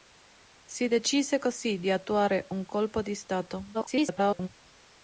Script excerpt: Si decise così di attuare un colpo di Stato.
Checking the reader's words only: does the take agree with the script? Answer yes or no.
no